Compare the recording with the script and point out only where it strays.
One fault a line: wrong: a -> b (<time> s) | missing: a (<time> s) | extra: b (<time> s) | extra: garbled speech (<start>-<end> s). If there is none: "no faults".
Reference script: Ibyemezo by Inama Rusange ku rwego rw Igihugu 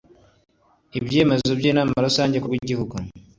missing: rwego (2.5 s)